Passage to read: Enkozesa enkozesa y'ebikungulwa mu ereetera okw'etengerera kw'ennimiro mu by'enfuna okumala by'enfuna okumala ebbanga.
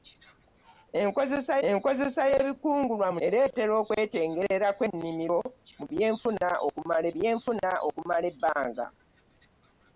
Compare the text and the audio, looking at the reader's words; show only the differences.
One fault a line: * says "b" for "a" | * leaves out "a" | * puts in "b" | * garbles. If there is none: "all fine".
all fine